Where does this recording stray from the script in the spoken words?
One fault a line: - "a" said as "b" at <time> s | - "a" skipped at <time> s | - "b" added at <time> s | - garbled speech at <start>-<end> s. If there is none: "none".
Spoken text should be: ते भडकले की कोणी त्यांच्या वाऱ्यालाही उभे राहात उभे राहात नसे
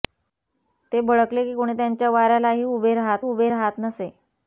none